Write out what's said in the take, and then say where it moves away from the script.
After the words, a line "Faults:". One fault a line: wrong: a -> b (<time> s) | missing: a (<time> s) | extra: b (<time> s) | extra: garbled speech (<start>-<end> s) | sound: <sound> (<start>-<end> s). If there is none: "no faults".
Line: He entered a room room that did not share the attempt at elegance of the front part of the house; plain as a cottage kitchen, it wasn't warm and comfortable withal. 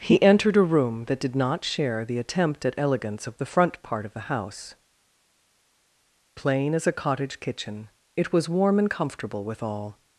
He entered a room that did not share the attempt at elegance of the front part of the house; plain as a cottage kitchen, it was warm and comfortable withal.
Faults:
missing: room (1.1 s)
wrong: wasn't -> was (8.3 s)